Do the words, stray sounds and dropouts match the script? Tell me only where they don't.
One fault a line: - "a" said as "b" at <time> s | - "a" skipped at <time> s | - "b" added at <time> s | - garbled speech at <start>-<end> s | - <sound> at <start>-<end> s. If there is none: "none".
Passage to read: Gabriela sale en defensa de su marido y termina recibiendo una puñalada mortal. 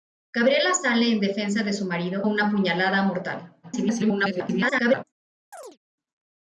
- "y termina recibiendo" skipped at 2.2 s
- garbled speech at 3.6-5.0 s
- chirp at 5.5-5.8 s